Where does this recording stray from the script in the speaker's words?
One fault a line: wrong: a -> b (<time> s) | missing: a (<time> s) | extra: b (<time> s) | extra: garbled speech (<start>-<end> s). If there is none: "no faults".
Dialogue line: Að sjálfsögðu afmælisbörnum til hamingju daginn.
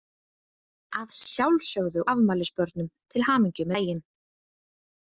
no faults